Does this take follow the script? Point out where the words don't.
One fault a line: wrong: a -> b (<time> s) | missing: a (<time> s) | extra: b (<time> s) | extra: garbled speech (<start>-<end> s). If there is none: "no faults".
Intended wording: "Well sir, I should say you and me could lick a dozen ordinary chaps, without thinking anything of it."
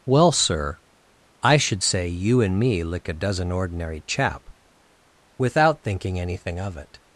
missing: could (2.8 s)
wrong: chaps -> chap (4.0 s)